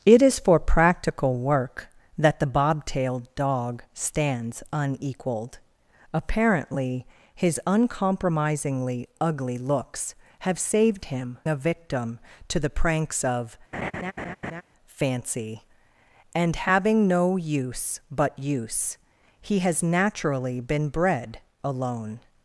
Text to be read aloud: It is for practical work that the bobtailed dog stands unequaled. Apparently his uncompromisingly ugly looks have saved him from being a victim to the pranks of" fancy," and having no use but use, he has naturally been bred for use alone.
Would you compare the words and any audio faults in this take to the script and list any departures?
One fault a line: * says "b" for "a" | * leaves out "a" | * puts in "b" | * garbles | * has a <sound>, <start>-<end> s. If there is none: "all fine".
* leaves out "from being"
* has a laugh, 13.7-14.6 s
* leaves out "for use"